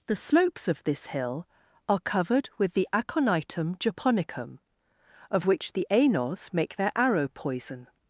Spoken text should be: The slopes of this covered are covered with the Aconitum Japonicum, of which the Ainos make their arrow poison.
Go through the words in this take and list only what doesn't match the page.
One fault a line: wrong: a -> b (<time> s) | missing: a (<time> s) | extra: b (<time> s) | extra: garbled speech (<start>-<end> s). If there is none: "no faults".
wrong: covered -> hill (1.1 s)